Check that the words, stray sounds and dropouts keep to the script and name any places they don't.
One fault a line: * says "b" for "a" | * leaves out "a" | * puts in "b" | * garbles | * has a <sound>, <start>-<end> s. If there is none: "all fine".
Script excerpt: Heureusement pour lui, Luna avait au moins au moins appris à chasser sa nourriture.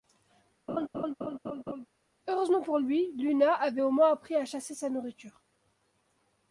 * has a laugh, 0.7-1.9 s
* leaves out "au moins"